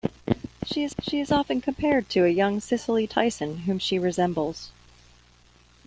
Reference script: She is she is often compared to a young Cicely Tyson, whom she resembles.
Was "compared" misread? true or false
false